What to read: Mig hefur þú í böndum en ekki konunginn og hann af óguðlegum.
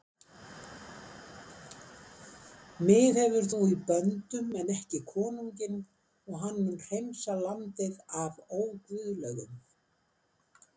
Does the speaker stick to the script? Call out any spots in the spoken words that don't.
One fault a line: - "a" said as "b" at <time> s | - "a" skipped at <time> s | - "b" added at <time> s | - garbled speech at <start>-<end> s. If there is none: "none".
- "mun hreinsa landið" added at 6.6 s